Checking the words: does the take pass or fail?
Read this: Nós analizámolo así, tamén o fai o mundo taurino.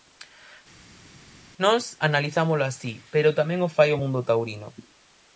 fail